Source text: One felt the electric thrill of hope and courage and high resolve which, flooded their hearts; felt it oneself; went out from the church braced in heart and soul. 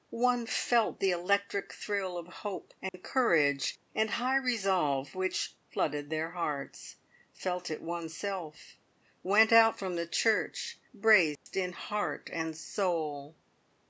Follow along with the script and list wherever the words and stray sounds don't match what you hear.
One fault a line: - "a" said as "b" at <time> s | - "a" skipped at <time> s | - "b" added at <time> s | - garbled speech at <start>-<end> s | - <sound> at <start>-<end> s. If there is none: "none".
- dropout at 2.9-2.9 s
- dropout at 11.4-11.5 s